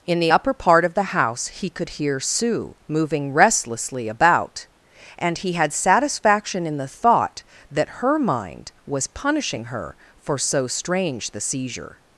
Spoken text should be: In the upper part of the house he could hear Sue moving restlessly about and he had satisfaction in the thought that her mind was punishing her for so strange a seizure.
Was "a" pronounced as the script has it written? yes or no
no